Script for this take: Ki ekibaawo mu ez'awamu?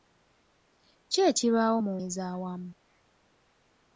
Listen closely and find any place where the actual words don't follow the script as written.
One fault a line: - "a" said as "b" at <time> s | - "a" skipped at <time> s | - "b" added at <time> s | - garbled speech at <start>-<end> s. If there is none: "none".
none